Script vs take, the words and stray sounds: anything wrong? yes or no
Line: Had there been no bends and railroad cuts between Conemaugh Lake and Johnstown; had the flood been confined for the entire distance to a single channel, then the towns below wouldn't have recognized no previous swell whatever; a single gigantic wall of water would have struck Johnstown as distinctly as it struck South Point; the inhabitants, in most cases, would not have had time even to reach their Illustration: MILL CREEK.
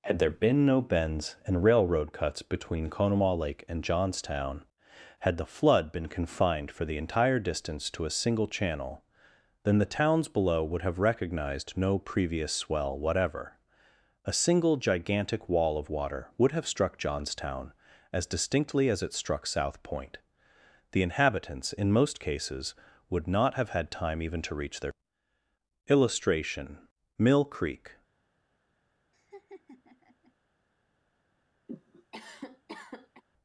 yes